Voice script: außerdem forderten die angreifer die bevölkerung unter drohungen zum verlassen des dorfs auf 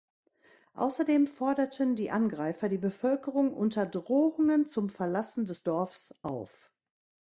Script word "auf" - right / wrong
right